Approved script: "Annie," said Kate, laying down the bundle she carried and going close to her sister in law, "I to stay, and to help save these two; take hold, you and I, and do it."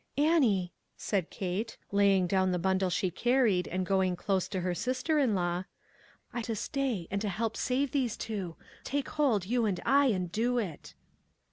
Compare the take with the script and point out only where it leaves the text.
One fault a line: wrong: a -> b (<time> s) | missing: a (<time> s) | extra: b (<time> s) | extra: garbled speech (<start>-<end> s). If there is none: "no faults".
no faults